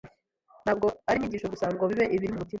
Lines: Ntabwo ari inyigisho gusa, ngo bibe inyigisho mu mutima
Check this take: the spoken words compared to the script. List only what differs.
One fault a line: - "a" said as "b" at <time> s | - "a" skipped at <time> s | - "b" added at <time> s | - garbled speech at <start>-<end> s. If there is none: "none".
- "inyigisho" said as "ibiri" at 2.1 s